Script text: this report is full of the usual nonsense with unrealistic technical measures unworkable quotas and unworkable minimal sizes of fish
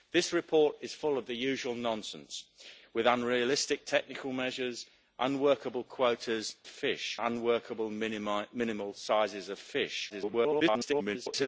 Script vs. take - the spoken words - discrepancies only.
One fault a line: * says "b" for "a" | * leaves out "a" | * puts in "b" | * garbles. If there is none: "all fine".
* says "fish" for "and"
* garbles